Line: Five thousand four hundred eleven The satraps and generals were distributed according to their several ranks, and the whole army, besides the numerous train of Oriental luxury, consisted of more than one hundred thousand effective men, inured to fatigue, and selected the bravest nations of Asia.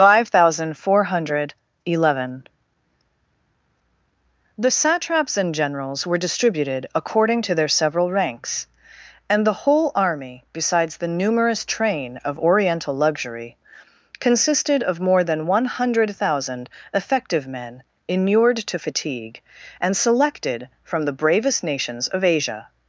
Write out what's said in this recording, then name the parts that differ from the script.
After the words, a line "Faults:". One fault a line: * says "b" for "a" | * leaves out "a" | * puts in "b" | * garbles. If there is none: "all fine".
Five thousand four hundred eleven The satraps and generals were distributed according to their several ranks, and the whole army, besides the numerous train of Oriental luxury, consisted of more than one hundred thousand effective men, inured to fatigue, and selected from the bravest nations of Asia.
Faults:
* puts in "from"